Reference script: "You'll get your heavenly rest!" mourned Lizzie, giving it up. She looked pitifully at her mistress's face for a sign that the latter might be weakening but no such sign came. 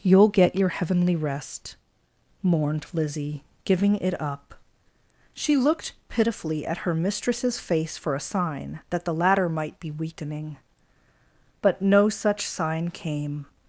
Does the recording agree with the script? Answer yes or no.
yes